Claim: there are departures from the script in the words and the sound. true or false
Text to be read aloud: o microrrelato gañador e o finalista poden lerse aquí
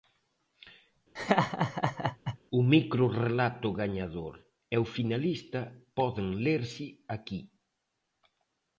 true